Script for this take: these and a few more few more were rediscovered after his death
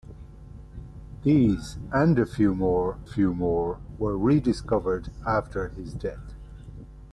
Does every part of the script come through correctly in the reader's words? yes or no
yes